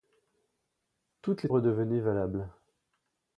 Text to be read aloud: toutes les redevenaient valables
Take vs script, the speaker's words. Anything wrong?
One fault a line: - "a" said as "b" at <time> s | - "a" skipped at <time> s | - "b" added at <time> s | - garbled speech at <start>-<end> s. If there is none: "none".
none